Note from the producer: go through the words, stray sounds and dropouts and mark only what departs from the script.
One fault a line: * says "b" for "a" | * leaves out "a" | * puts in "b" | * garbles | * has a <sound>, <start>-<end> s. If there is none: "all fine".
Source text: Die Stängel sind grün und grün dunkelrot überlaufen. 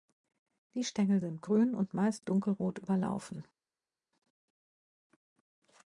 * says "meist" for "grün"